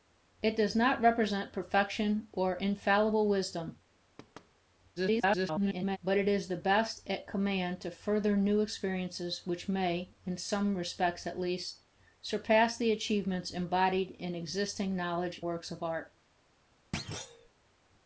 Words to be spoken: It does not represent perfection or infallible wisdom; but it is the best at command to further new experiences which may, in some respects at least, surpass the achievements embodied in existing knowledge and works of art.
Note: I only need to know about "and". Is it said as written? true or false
false